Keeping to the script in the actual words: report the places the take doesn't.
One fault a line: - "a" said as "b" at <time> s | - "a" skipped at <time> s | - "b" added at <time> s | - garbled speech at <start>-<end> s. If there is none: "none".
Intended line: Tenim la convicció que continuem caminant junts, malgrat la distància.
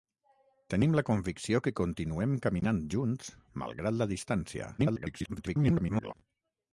- garbled speech at 4.8-6.1 s